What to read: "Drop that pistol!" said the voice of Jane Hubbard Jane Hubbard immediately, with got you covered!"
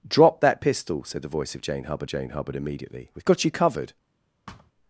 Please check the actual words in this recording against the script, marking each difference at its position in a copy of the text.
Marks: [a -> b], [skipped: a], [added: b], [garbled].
"Drop that pistol!" said the voice of Jane Hubbard Jane Hubbard immediately, with got you covered!"